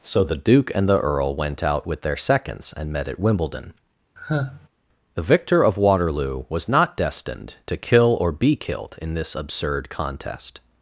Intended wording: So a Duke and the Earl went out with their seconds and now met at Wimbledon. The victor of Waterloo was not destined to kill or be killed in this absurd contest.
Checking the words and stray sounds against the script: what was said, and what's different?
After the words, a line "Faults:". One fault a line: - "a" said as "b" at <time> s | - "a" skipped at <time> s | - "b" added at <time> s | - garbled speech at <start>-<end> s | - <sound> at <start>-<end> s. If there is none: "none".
So the Duke and the Earl went out with their seconds and met at Wimbledon. The victor of Waterloo was not destined to kill or be killed in this absurd contest.
Faults:
- "a" said as "the" at 0.2 s
- "now" skipped at 2.9 s
- sigh at 4.2-4.7 s